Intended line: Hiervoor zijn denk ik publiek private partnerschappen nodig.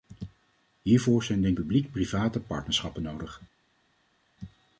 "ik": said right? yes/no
no